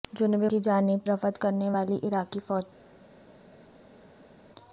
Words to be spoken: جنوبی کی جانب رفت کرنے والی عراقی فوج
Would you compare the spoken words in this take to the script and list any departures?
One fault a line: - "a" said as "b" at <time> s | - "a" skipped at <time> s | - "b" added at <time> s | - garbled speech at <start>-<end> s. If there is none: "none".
none